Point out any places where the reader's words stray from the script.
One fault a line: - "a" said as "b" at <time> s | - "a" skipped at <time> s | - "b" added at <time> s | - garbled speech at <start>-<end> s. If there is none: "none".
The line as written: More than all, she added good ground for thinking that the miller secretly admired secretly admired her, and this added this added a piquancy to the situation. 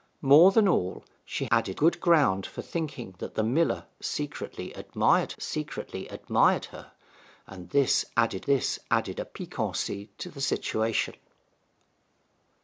none